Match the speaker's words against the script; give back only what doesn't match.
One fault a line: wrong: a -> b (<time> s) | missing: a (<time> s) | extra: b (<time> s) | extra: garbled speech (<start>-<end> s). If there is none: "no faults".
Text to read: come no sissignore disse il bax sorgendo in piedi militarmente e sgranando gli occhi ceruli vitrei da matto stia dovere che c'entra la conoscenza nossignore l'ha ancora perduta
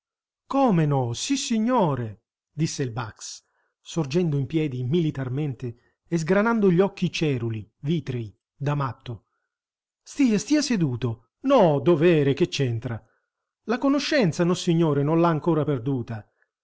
extra: stia seduto no (10.4 s)
extra: non (15.0 s)